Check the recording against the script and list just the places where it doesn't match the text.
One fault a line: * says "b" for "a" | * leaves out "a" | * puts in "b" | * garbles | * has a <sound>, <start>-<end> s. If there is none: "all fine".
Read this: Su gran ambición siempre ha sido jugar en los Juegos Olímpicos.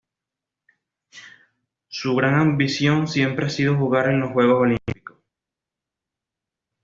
all fine